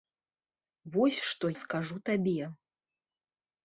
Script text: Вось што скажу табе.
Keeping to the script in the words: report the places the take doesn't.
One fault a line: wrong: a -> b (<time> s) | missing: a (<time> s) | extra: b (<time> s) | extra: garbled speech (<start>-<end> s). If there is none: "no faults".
no faults